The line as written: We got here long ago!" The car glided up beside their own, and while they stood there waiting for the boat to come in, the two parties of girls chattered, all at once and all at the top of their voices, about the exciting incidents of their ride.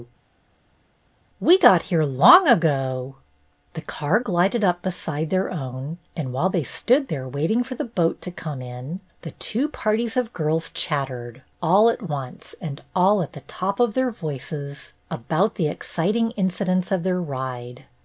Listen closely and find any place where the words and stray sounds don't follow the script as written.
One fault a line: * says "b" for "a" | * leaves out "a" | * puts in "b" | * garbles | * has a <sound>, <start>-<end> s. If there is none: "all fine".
all fine